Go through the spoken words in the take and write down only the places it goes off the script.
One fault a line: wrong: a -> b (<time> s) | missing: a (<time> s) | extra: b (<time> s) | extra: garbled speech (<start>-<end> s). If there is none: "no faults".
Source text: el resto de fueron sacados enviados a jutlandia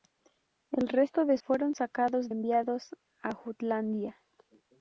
no faults